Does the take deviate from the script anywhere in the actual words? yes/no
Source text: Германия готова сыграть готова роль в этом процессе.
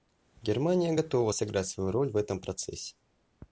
yes